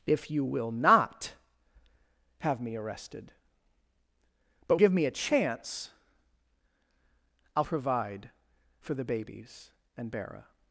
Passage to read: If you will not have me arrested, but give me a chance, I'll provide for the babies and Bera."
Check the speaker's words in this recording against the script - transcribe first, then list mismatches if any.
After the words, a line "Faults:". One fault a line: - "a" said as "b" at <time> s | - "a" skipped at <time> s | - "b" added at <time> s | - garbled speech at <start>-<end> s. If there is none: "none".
If you will not have me arrested, but give me a chance, I'll provide for the babies and Bera."
Faults:
none